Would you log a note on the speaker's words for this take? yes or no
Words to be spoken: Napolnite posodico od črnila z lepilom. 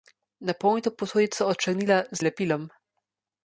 no